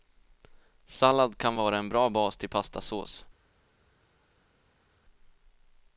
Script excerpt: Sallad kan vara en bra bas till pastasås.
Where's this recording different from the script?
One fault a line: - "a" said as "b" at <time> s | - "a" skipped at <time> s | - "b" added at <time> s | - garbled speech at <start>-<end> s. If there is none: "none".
none